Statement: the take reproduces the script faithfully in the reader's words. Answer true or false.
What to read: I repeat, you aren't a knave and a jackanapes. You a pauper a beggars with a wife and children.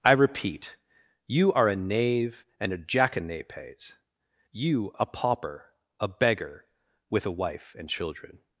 false